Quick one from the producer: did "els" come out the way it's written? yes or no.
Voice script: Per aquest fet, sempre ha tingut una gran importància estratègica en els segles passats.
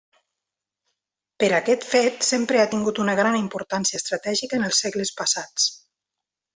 yes